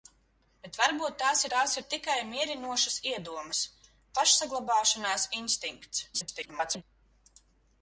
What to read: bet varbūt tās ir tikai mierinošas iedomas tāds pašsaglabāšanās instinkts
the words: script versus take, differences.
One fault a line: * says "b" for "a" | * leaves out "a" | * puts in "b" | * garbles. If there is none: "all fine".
* puts in "tās"
* leaves out "tāds"
* garbles